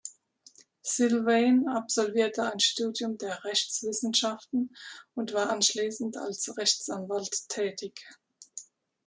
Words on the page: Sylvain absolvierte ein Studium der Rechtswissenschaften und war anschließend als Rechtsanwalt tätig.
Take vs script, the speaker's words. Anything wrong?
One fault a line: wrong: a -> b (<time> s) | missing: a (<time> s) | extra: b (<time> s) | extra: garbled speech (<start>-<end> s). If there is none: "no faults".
no faults